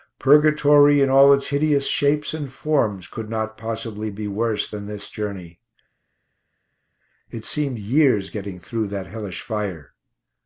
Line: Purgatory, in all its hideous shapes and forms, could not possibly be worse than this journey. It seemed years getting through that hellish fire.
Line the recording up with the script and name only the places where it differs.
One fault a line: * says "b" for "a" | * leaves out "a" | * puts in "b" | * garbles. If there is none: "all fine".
all fine